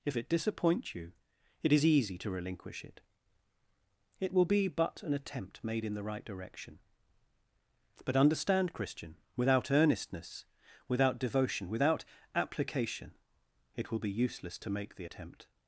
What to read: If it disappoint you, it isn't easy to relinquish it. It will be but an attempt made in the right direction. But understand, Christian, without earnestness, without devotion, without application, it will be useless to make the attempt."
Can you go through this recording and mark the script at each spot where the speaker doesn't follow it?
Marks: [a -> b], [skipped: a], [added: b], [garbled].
If it disappoint you, it [isn't -> is] easy to relinquish it. It will be but an attempt made in the right direction. But understand, Christian, without earnestness, without devotion, without application, it will be useless to make the attempt."